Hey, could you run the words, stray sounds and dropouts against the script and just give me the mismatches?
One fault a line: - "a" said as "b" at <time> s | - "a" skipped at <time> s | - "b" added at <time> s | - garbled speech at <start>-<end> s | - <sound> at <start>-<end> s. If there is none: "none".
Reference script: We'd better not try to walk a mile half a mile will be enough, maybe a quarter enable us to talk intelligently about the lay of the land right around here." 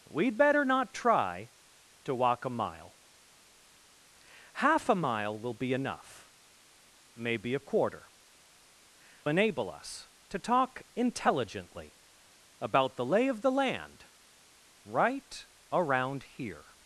none